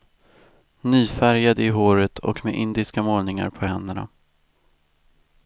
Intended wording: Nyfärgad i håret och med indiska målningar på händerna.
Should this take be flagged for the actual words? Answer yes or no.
no